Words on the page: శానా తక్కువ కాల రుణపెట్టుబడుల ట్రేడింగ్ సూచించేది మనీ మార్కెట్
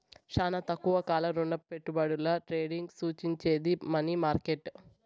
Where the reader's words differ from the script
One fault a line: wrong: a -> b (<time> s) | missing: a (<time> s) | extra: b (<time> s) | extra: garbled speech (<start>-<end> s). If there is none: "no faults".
no faults